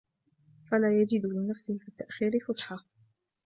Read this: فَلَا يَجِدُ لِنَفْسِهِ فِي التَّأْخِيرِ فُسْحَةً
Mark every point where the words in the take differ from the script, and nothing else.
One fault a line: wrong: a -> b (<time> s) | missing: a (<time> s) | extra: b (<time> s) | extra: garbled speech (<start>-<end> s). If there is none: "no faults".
no faults